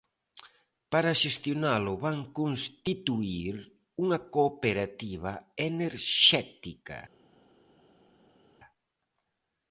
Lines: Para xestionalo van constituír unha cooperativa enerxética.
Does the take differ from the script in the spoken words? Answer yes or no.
no